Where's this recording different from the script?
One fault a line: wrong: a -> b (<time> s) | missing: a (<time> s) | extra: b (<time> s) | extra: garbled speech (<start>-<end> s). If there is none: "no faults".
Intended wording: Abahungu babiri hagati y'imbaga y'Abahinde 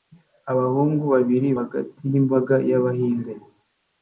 no faults